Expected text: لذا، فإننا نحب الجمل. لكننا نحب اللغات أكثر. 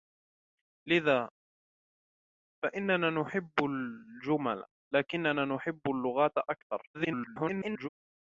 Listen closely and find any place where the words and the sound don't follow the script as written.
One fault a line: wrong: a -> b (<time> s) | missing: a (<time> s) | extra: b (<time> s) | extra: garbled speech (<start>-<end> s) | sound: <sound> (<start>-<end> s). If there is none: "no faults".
extra: garbled speech (6.9-7.9 s)